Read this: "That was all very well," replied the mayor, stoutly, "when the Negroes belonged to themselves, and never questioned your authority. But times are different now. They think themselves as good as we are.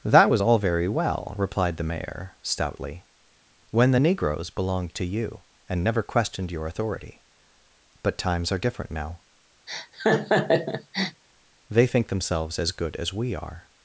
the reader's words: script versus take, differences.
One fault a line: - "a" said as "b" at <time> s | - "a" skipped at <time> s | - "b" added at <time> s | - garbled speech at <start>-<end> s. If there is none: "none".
- "themselves" said as "you" at 5.1 s